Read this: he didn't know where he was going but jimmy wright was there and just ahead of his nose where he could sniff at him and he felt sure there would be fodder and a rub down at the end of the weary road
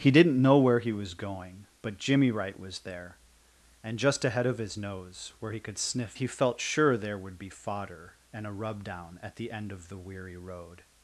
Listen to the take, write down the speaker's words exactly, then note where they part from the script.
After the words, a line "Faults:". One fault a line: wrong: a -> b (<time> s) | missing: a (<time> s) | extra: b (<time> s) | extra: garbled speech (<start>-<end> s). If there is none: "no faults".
he didn't know where he was going but jimmy wright was there and just ahead of his nose where he could sniff he felt sure there would be fodder and a rub down at the end of the weary road
Faults:
missing: at him and (6.2 s)